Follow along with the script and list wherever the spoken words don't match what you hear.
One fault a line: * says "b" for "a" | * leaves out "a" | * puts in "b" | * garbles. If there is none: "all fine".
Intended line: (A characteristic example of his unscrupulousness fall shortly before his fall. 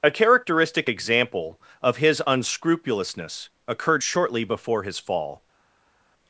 * says "occurred" for "fall"